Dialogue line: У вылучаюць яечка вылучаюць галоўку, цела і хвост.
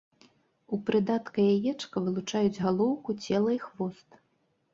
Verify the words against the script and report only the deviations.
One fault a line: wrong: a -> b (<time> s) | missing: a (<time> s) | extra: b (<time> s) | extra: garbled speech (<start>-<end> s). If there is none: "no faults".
wrong: вылучаюць -> прыдатка (0.9 s)